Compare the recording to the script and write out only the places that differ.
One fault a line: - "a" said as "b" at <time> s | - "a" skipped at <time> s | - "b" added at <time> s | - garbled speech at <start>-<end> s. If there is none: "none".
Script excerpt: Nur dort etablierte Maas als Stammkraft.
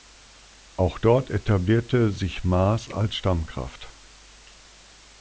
- "Nur" said as "Auch" at 0.8 s
- "sich" added at 2.1 s